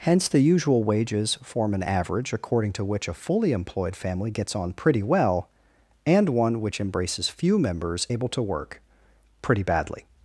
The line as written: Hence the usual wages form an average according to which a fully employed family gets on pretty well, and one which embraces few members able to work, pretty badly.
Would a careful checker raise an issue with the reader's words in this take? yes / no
no